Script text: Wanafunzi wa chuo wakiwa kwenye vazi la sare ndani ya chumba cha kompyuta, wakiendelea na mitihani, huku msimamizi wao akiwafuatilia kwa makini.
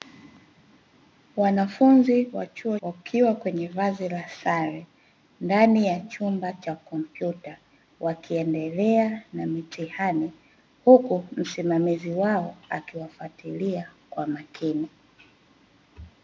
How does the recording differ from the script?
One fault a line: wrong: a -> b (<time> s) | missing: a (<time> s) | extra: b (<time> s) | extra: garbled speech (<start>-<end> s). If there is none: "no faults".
no faults